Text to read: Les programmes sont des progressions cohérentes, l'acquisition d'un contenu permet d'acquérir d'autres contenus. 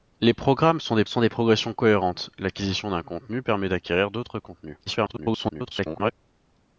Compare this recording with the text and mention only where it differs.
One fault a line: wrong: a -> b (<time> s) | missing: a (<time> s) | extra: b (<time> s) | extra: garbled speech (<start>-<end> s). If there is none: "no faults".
extra: sont des (1.1 s)
extra: garbled speech (4.9-6.1 s)